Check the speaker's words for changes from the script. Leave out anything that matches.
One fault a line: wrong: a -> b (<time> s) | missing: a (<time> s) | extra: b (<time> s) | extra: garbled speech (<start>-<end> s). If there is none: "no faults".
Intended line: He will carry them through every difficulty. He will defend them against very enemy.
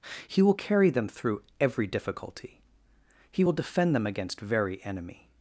no faults